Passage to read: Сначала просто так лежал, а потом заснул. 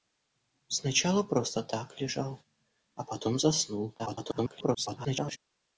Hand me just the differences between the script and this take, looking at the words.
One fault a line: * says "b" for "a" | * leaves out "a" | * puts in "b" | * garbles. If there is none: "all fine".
* garbles